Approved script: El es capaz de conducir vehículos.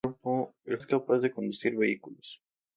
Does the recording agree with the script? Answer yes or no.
yes